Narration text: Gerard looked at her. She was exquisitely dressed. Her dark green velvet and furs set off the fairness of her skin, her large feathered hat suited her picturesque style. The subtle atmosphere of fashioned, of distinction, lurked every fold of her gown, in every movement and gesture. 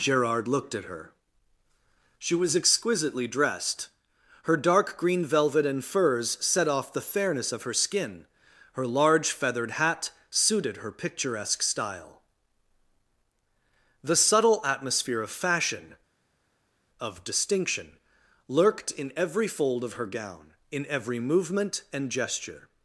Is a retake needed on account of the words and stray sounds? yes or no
yes